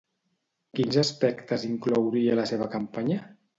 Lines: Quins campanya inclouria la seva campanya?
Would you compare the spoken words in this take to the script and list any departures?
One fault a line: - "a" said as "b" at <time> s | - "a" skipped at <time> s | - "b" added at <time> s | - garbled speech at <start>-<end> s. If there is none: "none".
- "campanya" said as "aspectes" at 1.0 s